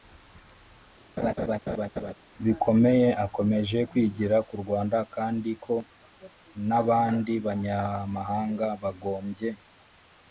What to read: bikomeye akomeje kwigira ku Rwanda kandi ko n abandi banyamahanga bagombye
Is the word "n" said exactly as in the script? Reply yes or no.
yes